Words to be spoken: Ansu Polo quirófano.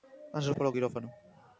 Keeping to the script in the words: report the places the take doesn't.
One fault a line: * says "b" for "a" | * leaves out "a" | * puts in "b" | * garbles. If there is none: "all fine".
all fine